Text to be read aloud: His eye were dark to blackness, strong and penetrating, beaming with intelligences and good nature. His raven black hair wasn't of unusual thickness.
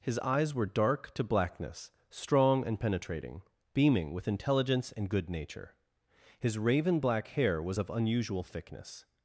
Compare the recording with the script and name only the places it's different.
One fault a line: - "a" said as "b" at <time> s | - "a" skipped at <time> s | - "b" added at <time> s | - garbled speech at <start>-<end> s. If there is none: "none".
- "eye" said as "eyes" at 0.2 s
- "intelligences" said as "intelligence" at 4.3 s
- "wasn't" said as "was" at 7.6 s